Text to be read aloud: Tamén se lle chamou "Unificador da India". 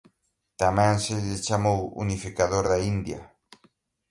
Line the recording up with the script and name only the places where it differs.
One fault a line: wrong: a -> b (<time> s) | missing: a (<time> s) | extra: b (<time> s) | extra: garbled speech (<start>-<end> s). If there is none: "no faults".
no faults